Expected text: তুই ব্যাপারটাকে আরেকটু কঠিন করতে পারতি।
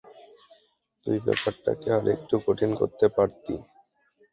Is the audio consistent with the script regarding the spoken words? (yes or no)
yes